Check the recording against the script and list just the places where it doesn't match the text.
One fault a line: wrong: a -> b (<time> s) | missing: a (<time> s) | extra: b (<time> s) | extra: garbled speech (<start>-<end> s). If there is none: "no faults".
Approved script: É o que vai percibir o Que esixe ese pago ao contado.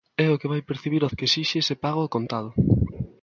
no faults